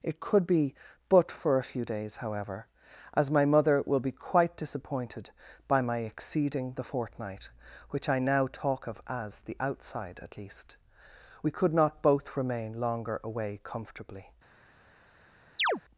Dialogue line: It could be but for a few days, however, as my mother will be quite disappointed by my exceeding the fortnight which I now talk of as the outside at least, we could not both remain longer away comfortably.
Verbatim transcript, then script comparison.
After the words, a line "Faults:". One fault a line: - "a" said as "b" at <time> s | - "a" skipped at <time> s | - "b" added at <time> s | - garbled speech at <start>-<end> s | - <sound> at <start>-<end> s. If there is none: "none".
It could be but for a few days, however, as my mother will be quite disappointed by my exceeding the fortnight which I now talk of as the outside at least, we could not both remain longer away comfortably.
Faults:
- chirp at 15.6-15.8 s